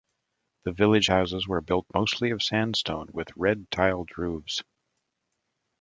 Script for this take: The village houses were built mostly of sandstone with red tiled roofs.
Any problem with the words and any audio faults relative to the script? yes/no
no